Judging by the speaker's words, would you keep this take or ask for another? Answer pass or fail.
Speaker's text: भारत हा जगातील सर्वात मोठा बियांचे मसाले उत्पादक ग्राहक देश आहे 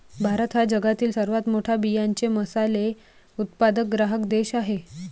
pass